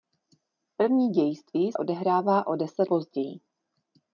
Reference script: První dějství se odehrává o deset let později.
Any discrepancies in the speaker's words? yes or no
yes